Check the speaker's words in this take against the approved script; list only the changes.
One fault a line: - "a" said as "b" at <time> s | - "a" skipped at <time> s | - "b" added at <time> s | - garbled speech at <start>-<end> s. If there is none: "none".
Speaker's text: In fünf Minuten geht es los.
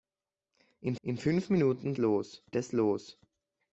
- "in" added at 1.0 s
- "geht" said as "los" at 2.0 s